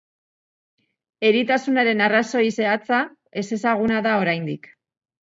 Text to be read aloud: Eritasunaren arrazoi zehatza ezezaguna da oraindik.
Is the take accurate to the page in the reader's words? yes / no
yes